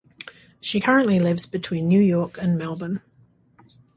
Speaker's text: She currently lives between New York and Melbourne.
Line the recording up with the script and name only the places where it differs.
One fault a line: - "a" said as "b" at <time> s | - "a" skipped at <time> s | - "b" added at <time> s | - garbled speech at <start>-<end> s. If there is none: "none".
none